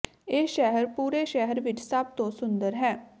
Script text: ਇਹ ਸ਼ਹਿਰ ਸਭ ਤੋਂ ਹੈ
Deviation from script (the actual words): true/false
true